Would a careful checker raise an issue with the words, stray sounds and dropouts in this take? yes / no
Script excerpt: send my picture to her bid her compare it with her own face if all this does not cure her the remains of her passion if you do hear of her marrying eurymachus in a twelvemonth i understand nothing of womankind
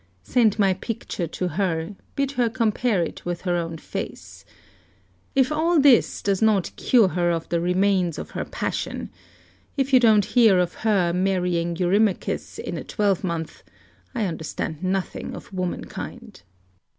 yes